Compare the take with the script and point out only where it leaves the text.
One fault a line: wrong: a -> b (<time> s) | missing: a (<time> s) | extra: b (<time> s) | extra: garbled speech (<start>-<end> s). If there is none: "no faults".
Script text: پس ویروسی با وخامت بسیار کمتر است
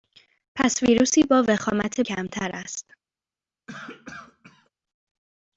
missing: بسیار (2.0 s)